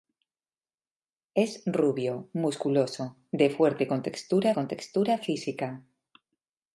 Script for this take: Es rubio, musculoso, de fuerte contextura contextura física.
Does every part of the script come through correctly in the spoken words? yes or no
yes